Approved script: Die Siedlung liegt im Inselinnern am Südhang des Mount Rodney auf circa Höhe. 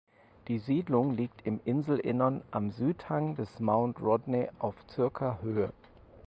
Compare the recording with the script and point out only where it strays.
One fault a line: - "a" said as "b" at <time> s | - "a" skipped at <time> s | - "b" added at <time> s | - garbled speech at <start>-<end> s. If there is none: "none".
none